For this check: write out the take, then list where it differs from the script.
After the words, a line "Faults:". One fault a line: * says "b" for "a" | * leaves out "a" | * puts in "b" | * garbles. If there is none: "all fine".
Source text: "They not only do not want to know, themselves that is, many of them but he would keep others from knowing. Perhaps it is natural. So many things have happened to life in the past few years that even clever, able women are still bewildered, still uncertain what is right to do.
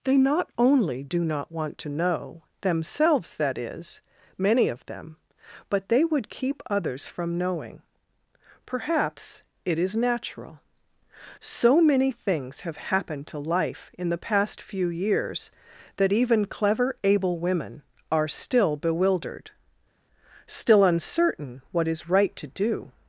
"They not only do not want to know, themselves that is, many of them but they would keep others from knowing. Perhaps it is natural. So many things have happened to life in the past few years that even clever, able women are still bewildered, still uncertain what is right to do.
Faults:
* says "they" for "he"